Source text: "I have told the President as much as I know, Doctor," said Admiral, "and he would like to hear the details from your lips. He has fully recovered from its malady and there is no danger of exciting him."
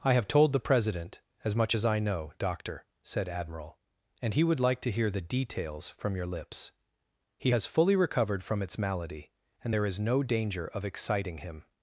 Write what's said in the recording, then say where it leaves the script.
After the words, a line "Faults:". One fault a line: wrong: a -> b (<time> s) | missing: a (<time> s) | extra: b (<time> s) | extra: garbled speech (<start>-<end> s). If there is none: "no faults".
"I have told the President as much as I know, Doctor," said Admiral, "and he would like to hear the details from your lips. He has fully recovered from its malady and there is no danger of exciting him."
Faults:
no faults